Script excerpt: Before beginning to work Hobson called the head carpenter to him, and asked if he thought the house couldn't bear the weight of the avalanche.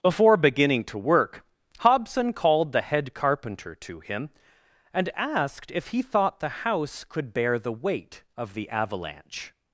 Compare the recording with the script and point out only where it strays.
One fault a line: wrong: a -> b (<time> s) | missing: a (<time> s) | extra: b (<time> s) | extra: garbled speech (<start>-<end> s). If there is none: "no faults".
wrong: couldn't -> could (7.0 s)